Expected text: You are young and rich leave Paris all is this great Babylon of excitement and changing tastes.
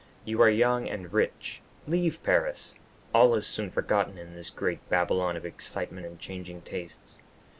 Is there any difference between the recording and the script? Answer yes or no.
yes